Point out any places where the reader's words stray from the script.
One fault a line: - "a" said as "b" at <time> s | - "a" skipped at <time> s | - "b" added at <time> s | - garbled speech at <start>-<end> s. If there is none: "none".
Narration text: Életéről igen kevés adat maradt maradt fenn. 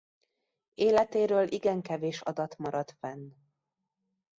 - "maradt" skipped at 3.0 s